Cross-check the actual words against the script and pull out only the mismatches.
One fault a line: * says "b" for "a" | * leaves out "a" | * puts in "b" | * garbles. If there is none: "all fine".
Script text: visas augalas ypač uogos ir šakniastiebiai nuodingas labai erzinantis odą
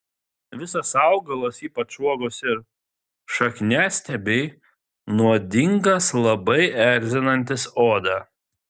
all fine